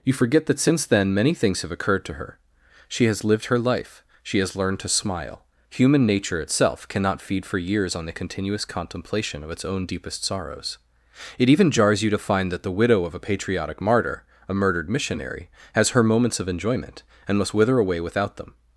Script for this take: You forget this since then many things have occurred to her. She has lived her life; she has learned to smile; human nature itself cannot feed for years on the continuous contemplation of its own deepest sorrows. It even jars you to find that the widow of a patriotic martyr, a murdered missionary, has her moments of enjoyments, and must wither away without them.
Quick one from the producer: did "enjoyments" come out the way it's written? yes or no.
no